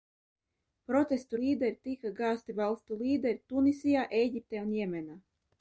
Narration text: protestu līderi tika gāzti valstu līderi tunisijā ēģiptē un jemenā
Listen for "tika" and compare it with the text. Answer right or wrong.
right